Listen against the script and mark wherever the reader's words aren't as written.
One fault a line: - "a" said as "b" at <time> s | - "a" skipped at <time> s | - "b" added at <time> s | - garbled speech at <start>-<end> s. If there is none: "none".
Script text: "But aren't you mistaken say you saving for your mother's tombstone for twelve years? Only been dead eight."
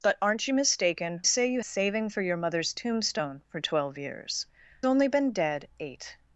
none